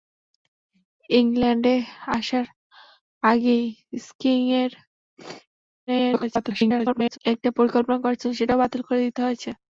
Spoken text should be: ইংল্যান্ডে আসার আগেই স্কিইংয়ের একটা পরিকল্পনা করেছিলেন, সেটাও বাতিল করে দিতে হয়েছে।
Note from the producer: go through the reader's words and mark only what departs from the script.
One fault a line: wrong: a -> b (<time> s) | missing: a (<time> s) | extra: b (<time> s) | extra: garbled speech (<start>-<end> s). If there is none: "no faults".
extra: garbled speech (5.9-7.2 s)